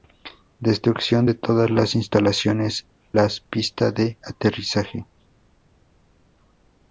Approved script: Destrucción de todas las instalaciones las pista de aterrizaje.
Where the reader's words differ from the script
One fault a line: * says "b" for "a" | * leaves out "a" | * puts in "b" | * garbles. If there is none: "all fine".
all fine